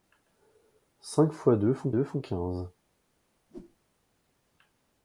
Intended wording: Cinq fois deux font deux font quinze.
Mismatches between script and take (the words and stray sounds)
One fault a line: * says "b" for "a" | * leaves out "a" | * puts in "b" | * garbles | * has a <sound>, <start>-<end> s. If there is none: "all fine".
* has a whoosh, 3.5-3.8 s